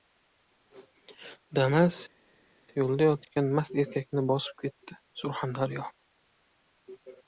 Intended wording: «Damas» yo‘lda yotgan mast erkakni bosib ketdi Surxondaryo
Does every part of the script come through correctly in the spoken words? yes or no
yes